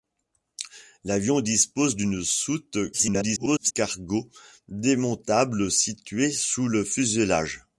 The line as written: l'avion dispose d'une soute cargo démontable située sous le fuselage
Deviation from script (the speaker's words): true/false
true